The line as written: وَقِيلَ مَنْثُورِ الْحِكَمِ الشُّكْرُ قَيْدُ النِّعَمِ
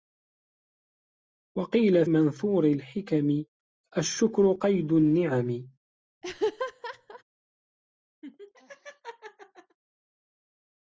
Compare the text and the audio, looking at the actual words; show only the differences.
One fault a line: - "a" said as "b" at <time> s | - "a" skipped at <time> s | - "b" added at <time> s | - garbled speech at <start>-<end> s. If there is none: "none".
none